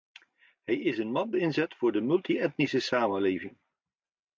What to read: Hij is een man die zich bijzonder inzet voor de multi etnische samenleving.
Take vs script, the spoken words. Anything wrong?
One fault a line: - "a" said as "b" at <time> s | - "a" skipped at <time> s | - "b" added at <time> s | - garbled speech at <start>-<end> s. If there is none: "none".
- "die zich bijzonder" skipped at 1.4 s